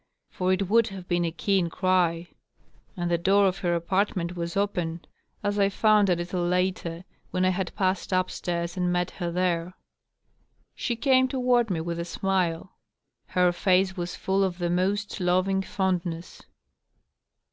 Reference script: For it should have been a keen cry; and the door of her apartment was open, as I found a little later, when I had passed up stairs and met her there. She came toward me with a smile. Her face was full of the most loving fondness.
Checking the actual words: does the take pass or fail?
fail